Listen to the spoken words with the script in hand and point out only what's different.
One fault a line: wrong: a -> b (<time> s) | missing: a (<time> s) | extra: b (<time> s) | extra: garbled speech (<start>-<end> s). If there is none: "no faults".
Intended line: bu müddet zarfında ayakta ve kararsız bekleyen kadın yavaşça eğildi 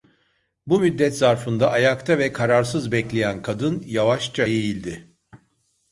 no faults